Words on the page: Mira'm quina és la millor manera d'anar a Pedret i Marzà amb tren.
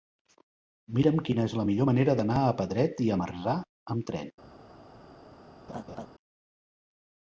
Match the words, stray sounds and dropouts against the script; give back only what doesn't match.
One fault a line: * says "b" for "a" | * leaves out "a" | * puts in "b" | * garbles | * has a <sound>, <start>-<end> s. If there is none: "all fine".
* has a laugh, 5.7-6.1 s